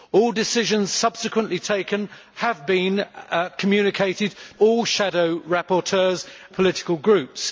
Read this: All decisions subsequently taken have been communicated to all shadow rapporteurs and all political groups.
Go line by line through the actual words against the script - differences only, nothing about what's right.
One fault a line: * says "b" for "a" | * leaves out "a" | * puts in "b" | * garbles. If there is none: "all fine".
* leaves out "to"
* leaves out "and all"